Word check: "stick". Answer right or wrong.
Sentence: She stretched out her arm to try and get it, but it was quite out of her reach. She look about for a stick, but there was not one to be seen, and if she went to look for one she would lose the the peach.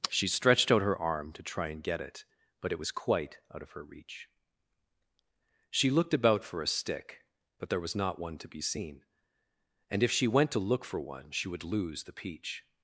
right